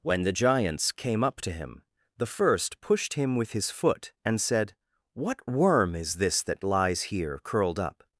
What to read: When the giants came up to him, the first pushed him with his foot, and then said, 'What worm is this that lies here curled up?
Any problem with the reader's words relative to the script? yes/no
yes